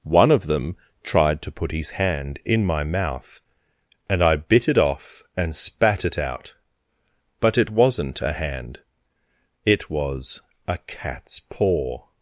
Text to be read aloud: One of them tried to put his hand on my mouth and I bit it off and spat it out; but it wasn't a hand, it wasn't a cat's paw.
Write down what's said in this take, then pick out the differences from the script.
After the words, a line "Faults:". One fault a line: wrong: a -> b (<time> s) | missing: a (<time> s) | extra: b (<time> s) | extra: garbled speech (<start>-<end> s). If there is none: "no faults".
One of them tried to put his hand in my mouth and I bit it off and spat it out; but it wasn't a hand, it was a cat's paw.
Faults:
wrong: on -> in (2.5 s)
wrong: wasn't -> was (9.9 s)